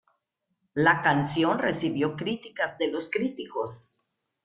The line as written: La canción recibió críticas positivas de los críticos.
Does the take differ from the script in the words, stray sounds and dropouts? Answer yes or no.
yes